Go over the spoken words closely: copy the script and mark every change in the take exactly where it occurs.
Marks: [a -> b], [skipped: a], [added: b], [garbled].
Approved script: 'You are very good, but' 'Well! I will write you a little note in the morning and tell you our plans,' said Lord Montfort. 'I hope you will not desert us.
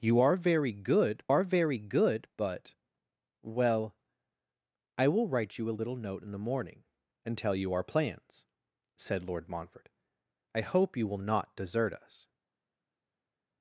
'You are very good, [added: are very good] but' 'Well! I will write you a little note in the morning and tell you our plans,' said Lord Montfort. 'I hope you will not desert us.